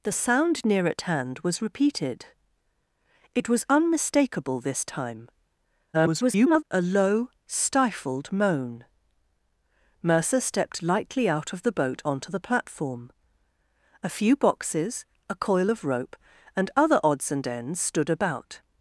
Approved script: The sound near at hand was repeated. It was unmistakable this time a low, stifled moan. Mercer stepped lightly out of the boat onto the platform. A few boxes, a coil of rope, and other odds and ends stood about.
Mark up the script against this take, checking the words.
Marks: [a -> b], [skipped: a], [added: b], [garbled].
The sound near at hand was repeated. It was unmistakable this time [garbled] a low, stifled moan. Mercer stepped lightly out of the boat onto the platform. A few boxes, a coil of rope, and other odds and ends stood about.